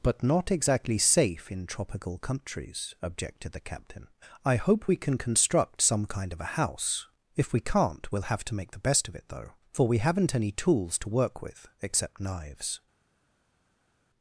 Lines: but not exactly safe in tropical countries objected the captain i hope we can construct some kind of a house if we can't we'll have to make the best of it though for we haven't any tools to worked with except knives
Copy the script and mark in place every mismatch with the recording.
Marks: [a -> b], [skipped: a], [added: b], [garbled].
but not exactly safe in tropical countries objected the captain i hope we can construct some kind of a house if we can't we'll have to make the best of it though for we haven't any tools to [worked -> work] with except knives